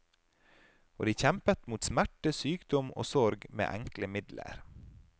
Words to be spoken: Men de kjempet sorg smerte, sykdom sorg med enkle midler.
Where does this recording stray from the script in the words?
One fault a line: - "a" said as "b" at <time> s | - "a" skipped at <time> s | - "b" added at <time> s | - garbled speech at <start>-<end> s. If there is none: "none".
- "Men" said as "Og" at 1.0 s
- "sorg" said as "mot" at 1.7 s
- "og" added at 3.0 s